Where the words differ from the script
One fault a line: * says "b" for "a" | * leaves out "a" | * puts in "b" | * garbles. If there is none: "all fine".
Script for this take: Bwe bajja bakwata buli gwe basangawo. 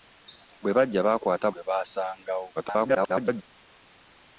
* leaves out "buli"
* garbles